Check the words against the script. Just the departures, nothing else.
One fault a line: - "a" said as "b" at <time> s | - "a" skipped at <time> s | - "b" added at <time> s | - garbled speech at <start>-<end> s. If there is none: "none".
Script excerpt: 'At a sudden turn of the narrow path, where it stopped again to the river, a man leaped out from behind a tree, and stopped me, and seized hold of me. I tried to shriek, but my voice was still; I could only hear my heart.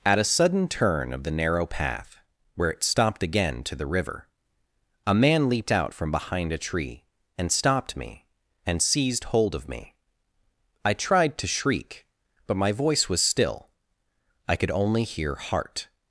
- "my" skipped at 15.3 s